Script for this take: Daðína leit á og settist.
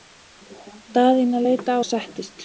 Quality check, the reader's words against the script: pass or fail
pass